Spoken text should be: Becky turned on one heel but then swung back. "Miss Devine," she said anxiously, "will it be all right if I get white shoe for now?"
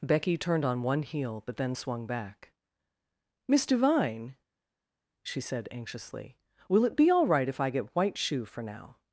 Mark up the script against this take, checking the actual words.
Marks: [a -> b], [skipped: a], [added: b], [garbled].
Becky turned on one heel but then swung back. "Miss Devine," she said anxiously, "will it be all right if I get white shoe for now?"